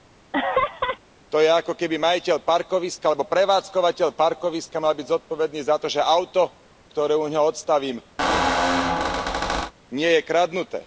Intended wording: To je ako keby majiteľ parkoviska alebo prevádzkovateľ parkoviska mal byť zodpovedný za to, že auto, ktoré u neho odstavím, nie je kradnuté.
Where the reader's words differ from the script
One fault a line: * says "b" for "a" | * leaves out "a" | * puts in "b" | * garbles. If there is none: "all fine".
all fine